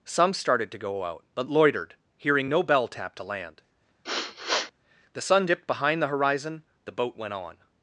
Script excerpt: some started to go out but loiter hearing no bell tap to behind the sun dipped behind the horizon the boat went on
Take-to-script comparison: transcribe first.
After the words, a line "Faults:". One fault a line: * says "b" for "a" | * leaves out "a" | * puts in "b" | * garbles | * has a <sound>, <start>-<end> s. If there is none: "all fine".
some started to go out but loitered hearing no bell tap to land the sun dipped behind the horizon the boat went on
Faults:
* says "loitered" for "loiter"
* says "land" for "behind"
* has a sniff, 4.0-4.7 s